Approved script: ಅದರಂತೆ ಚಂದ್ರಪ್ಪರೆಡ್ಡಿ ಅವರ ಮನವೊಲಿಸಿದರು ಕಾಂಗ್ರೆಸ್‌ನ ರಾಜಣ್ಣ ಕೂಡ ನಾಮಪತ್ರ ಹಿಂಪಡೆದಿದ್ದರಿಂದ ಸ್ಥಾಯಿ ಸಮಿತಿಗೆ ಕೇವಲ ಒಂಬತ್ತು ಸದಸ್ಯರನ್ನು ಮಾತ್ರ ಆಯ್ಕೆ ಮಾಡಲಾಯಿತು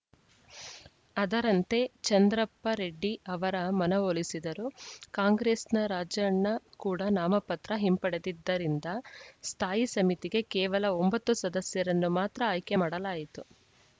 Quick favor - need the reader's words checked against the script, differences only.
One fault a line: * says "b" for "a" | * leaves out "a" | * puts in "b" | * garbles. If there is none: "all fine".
all fine